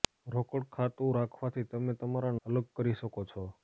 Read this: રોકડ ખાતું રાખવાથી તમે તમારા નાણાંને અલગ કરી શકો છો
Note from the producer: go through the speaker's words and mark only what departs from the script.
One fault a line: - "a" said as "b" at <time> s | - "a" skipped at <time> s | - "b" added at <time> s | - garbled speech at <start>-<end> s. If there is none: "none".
- "નાણાંને" skipped at 2.3 s